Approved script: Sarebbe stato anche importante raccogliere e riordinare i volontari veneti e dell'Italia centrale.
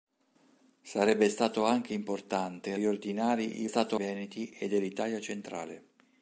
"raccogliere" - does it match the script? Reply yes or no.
no